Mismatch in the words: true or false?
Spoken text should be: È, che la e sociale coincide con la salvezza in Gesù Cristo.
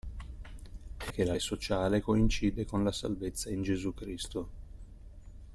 false